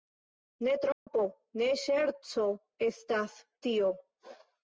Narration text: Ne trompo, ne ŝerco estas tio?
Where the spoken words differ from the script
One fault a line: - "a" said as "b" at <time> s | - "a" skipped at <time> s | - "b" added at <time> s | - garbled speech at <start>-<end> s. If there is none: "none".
none